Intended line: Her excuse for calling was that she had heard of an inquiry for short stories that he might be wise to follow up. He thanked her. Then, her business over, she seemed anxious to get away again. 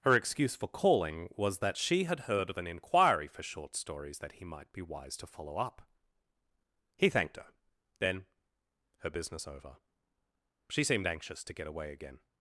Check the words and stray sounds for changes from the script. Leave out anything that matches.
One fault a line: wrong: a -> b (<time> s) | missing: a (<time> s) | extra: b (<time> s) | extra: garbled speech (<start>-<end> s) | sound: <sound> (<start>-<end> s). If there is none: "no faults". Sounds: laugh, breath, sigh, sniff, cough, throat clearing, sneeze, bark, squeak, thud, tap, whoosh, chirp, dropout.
no faults